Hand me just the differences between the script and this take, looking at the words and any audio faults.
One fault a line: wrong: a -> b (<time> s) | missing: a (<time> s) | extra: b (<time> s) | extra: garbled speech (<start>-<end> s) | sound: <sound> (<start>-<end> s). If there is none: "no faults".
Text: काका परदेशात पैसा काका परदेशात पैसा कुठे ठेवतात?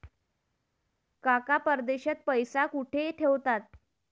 missing: काका परदेशात पैसा (2.6 s)